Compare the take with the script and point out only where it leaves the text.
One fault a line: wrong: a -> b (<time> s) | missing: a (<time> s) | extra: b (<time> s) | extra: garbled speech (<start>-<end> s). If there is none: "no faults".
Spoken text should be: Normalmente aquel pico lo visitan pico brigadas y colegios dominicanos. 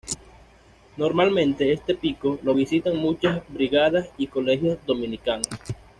wrong: aquel -> este (1.7 s)
wrong: pico -> muchas (2.9 s)